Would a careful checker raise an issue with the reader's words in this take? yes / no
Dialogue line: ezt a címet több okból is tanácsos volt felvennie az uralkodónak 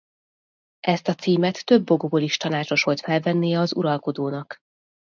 no